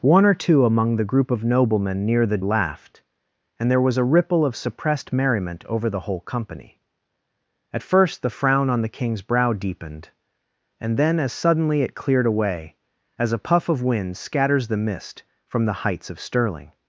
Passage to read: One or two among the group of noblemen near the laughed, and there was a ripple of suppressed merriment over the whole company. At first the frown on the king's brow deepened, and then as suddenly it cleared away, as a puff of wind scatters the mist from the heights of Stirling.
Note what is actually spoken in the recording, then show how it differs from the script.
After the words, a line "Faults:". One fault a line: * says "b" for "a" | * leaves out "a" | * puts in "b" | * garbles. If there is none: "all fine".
One or two among the group of noblemen near the laughed, and there was a ripple of suppressed merriment over the whole company. At first the frown on the king's brow deepened, and then as suddenly it cleared away, as a puff of wind scatters the mist from the heights of Stirling.
Faults:
all fine